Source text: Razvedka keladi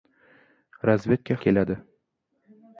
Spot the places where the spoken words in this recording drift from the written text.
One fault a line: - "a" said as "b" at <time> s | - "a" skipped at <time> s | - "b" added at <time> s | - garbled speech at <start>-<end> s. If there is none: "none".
none